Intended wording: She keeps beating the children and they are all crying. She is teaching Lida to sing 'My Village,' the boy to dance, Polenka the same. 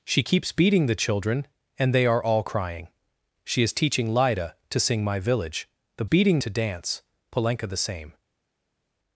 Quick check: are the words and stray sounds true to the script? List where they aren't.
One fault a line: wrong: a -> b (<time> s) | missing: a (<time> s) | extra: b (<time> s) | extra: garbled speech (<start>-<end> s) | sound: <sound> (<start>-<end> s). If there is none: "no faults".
wrong: boy -> beating (6.0 s)